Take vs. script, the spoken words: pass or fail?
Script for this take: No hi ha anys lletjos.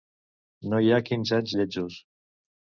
fail